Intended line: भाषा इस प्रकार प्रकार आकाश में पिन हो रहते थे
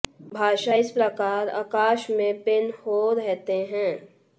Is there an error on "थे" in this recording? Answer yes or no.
yes